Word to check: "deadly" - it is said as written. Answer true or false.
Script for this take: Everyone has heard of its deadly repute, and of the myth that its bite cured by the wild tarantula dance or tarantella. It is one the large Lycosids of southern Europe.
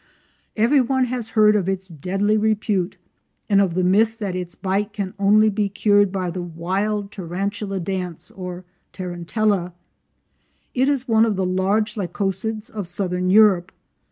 true